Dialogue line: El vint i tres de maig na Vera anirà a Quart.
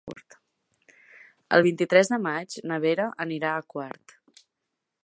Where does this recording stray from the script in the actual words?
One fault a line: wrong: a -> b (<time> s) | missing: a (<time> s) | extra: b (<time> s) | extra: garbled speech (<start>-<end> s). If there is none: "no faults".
no faults